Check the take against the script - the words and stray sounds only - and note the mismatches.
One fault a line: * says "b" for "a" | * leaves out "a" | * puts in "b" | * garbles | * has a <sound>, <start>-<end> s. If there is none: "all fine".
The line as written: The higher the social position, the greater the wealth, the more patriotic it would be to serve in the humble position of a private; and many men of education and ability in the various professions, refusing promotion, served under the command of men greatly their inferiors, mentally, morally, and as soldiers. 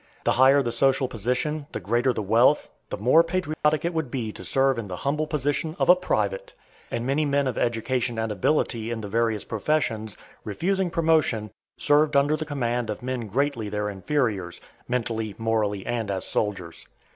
* has a dropout, 3.5-3.6 s